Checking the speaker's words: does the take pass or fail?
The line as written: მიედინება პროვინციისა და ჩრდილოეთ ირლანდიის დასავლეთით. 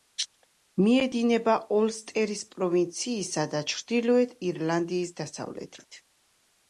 fail